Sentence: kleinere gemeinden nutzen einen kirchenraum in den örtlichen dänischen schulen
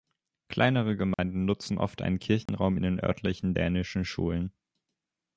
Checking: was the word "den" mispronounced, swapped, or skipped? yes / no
no